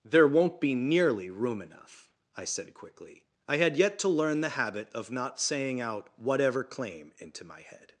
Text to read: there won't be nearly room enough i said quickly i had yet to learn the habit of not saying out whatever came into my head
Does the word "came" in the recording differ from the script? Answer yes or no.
yes